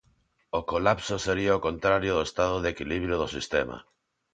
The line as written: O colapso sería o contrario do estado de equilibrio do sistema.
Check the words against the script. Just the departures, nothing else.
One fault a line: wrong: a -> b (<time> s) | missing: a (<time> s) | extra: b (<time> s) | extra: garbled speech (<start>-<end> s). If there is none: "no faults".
no faults